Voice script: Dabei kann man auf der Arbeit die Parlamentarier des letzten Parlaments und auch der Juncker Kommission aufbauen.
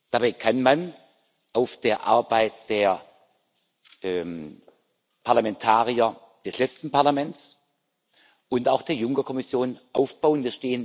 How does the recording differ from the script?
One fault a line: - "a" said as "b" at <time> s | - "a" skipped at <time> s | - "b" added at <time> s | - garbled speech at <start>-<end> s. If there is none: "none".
- "die" said as "der" at 2.7 s